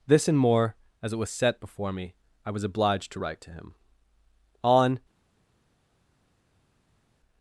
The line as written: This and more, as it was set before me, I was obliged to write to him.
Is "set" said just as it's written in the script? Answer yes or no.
yes